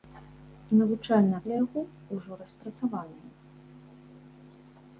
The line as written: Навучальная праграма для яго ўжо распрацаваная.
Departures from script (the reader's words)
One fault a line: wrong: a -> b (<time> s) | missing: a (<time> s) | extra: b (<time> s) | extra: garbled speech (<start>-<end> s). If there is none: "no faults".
missing: праграма (1.4 s)